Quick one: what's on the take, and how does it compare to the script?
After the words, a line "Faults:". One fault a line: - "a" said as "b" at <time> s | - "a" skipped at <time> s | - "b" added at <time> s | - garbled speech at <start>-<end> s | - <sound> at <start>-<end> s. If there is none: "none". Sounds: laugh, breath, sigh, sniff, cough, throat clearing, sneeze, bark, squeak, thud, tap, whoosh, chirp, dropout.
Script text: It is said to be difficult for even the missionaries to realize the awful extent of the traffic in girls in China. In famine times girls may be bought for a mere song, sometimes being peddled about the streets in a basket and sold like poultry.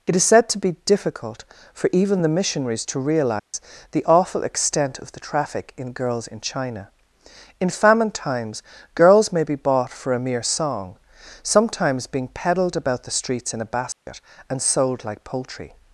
It is said to be difficult for even the missionaries to realize the awful extent of the traffic in girls in China. In famine times girls may be bought for a mere song, sometimes being peddled about the streets in a basket and sold like poultry.
Faults:
- dropout at 3.4-3.5 s
- dropout at 13.9-14.1 s